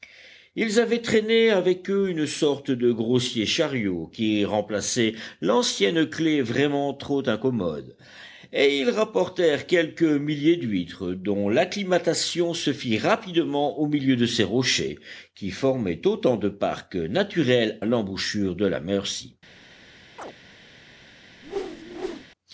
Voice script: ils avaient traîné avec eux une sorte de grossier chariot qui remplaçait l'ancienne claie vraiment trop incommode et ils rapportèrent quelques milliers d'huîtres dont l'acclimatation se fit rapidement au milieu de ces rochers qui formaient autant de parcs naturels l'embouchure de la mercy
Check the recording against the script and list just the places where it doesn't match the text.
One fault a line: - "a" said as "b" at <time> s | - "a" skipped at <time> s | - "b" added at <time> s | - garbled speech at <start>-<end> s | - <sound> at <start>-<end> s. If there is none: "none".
- chirp at 20.2-20.3 s
- whoosh at 21.4-22.3 s